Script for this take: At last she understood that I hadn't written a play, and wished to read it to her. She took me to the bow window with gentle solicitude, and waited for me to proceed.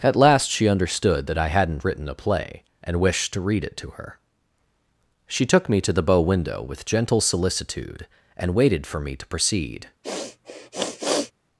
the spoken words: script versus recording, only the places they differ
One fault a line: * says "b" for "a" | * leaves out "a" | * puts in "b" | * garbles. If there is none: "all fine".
all fine